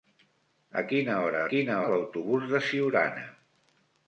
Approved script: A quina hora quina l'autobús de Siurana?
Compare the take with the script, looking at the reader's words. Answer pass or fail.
pass